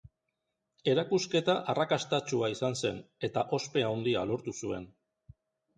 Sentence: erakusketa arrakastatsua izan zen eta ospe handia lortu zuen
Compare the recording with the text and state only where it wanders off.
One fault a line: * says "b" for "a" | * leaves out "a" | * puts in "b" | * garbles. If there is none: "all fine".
all fine